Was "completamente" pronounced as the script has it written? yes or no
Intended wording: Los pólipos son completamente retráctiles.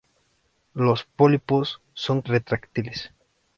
no